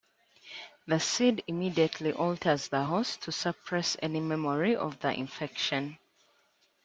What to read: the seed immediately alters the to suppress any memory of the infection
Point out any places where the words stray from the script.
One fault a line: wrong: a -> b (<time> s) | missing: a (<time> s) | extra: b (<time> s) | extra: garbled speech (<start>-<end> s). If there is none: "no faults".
extra: host (2.8 s)